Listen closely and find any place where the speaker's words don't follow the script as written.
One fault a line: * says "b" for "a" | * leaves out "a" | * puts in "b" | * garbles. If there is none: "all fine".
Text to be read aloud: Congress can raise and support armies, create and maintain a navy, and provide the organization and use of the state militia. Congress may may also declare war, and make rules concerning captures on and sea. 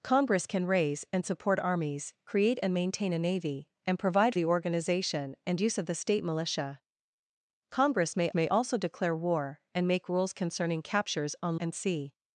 all fine